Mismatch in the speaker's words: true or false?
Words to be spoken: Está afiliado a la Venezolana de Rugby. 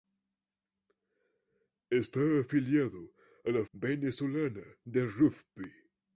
false